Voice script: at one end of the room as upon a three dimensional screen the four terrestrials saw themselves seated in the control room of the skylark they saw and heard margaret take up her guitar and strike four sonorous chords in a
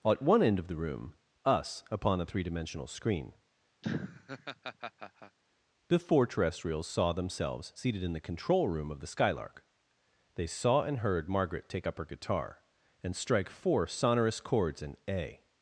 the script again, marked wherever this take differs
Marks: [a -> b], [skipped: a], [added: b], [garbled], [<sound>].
at one end of the room [as -> us] upon a three dimensional screen [laugh] the four terrestrials saw themselves seated in the control room of the skylark they saw and heard margaret take up her guitar and strike four sonorous chords in a